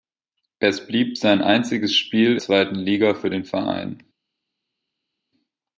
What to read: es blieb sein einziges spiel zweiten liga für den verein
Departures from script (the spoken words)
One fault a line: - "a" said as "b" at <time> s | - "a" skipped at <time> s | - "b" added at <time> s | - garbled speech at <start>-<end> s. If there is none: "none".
none